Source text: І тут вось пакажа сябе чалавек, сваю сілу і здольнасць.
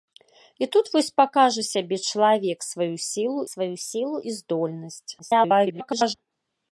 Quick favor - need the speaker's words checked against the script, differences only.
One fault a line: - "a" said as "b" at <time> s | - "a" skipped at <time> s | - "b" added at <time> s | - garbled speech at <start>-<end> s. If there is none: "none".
- "сваю сілу" added at 3.5 s
- garbled speech at 5.2-6.1 s